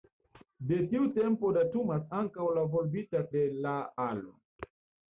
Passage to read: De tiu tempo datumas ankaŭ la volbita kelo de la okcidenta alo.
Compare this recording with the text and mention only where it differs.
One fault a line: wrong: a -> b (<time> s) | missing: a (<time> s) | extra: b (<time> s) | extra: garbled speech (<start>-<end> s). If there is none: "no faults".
missing: kelo (3.2 s)
missing: okcidenta (3.7 s)